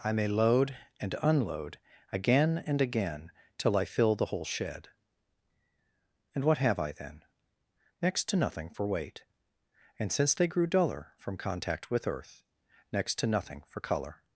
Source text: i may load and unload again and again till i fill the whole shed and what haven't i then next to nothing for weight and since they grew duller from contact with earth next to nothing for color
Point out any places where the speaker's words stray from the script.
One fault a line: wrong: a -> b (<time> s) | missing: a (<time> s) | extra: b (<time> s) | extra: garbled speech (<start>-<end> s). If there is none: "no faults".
wrong: haven't -> have (6.6 s)